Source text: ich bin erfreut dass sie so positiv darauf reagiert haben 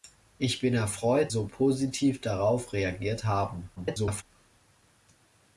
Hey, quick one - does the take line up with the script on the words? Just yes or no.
no